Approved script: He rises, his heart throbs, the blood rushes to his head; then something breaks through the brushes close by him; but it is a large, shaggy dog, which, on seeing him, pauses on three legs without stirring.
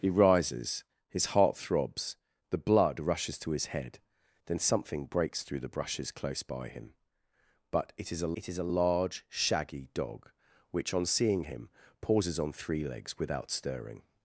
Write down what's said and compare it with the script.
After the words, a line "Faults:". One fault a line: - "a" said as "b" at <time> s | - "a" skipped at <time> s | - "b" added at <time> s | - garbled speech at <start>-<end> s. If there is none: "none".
He rises, his heart throbs, the blood rushes to his head; then something breaks through the brushes close by him; but it is a it is a large, shaggy dog, which, on seeing him, pauses on three legs without stirring.
Faults:
- "it is a" added at 8.3 s